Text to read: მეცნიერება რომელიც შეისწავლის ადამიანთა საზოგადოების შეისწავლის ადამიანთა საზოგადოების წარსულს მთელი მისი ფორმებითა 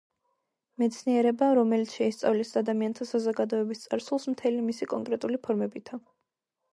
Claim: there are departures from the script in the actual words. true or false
true